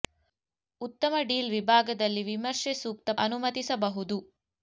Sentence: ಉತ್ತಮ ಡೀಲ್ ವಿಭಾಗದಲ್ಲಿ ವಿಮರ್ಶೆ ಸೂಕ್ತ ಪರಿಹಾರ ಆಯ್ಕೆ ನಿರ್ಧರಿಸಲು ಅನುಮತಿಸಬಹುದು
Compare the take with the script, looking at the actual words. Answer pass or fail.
fail